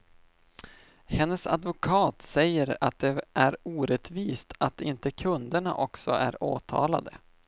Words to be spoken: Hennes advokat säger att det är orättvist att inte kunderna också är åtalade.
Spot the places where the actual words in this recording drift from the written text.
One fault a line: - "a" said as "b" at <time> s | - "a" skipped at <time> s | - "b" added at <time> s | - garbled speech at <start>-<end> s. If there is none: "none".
none